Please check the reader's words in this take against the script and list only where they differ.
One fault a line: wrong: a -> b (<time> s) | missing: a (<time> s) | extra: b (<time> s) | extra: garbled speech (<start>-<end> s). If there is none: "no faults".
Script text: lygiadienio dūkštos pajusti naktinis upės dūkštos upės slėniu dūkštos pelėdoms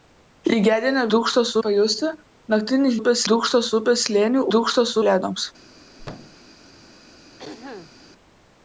no faults